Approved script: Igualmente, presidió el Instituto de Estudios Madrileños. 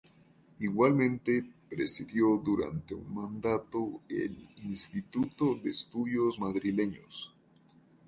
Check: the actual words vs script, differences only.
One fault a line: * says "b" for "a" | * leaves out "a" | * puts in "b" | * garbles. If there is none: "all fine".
* puts in "durante un mandato"